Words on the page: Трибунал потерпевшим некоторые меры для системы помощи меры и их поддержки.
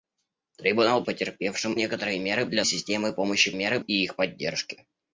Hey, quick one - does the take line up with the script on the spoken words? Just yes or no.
yes